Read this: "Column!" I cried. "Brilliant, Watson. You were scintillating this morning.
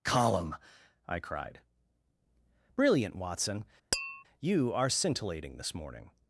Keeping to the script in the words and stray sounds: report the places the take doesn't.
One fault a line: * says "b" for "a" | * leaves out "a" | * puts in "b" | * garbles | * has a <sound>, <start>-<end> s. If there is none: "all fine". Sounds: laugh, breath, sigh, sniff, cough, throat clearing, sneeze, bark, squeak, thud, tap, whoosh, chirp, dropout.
* has a tap, 3.9-4.2 s
* says "are" for "were"